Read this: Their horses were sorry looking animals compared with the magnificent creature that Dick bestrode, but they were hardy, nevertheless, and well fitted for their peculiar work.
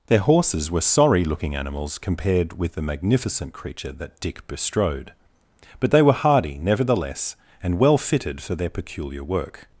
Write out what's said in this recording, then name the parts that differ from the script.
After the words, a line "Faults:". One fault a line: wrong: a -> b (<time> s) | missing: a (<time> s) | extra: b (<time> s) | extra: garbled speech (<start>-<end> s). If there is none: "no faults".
Their horses were sorry looking animals compared with the magnificent creature that Dick bestrode, but they were hardy, nevertheless, and well fitted for their peculiar work.
Faults:
no faults